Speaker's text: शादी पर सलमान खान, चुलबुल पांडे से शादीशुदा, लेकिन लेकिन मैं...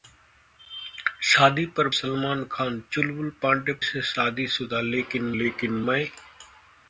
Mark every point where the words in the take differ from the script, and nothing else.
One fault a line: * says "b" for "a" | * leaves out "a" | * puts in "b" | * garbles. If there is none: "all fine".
all fine